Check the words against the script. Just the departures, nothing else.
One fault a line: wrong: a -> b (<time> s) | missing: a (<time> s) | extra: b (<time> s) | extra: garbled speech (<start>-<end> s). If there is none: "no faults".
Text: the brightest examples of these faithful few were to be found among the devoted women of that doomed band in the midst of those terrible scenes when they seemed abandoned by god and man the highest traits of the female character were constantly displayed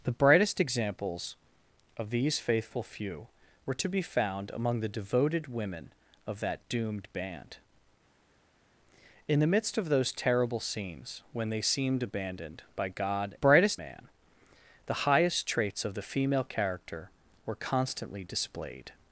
wrong: and -> brightest (13.3 s)